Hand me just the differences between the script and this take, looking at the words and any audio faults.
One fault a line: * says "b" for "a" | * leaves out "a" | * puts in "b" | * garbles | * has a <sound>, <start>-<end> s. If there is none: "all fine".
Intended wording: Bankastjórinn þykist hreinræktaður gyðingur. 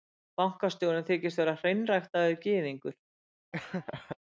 * puts in "vera"
* has a laugh, 3.5-4.2 s